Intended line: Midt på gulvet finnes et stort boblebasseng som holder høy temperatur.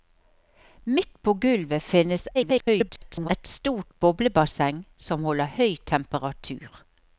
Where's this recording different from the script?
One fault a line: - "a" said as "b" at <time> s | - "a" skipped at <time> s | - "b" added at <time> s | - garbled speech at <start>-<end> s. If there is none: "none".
- garbled speech at 2.3-3.3 s